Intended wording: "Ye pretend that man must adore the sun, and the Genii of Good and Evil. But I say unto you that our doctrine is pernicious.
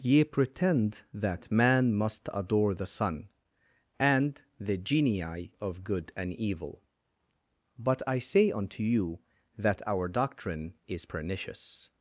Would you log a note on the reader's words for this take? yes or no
no